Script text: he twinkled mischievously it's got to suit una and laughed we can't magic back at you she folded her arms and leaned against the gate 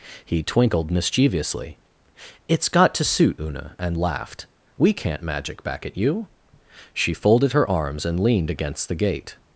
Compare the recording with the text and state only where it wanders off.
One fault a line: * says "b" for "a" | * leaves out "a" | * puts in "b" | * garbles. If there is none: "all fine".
all fine